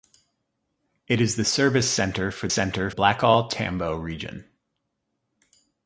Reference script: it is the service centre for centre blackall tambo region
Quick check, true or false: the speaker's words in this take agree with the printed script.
true